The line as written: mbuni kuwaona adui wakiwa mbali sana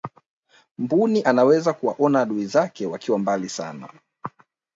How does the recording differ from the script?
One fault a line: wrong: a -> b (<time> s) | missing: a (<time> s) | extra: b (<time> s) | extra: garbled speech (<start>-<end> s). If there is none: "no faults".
extra: anaweza (1.2 s)
extra: zake (2.4 s)